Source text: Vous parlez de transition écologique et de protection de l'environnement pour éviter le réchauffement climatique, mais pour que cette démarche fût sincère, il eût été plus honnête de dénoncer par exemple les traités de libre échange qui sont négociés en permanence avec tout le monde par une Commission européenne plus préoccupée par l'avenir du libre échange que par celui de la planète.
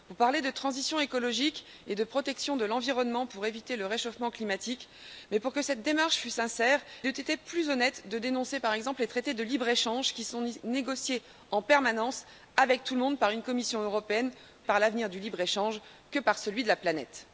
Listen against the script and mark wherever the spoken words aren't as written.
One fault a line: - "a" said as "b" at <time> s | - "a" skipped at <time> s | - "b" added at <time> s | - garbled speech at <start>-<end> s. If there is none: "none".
- "il" skipped at 6.8 s
- "plus préoccupée" skipped at 14.3 s